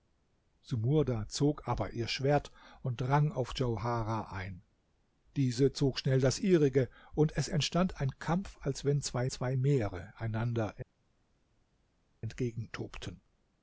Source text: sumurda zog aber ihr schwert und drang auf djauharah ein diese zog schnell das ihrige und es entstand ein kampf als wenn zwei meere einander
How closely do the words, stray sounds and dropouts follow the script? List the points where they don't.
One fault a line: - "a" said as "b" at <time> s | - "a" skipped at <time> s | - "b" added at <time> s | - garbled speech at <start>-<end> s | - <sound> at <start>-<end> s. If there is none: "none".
- "zwei" added at 9.3 s